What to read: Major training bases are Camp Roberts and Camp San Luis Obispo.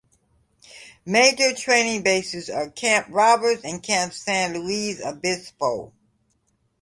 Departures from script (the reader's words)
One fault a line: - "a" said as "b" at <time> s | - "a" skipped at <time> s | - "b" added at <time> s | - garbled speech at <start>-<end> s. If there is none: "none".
none